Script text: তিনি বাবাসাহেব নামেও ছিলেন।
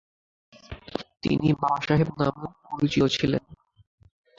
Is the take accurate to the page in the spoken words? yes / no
no